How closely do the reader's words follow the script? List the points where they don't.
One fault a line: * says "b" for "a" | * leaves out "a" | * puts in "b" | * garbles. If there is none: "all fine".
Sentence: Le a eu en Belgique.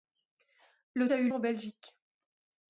all fine